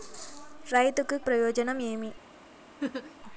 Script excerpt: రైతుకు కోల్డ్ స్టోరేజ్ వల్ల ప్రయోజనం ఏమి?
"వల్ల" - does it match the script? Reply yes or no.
no